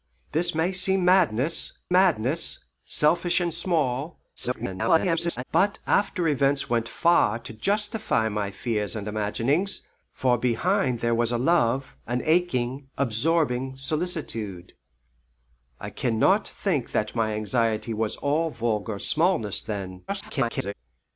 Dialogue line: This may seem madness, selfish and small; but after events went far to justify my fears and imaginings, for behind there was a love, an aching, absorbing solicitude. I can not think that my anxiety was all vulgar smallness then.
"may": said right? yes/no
yes